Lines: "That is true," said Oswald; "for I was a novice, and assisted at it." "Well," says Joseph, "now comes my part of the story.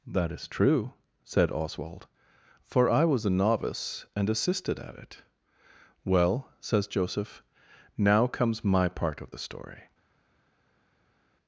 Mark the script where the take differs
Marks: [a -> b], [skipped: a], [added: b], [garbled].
"That is true," said Oswald; "for I was a novice, and assisted at it." "Well," says Joseph, "now comes my part of the story.